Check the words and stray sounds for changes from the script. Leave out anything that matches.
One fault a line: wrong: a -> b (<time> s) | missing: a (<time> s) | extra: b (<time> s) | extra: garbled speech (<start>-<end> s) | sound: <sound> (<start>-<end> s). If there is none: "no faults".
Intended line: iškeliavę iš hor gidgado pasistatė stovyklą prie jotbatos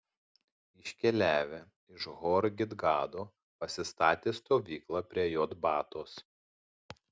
no faults